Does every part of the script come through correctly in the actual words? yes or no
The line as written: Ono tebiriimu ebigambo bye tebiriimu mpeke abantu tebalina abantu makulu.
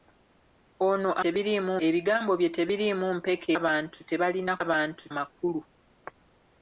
yes